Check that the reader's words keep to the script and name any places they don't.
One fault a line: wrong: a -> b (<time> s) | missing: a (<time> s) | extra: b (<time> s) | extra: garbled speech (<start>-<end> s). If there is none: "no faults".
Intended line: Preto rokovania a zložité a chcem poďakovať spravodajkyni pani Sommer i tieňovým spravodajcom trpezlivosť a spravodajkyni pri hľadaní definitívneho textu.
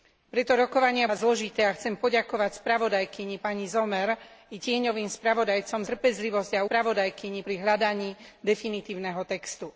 no faults